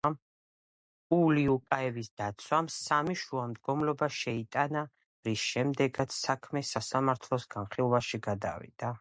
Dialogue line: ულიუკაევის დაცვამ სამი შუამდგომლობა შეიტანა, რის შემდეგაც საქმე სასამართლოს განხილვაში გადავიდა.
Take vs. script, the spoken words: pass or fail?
pass